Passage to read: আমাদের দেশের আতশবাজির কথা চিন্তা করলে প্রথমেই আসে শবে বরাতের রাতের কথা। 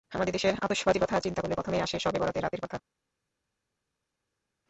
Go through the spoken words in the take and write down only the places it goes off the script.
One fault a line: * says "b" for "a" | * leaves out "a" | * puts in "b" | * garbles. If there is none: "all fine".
all fine